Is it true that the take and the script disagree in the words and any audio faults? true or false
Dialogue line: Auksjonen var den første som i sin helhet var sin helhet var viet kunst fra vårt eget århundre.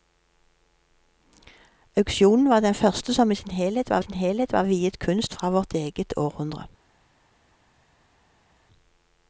false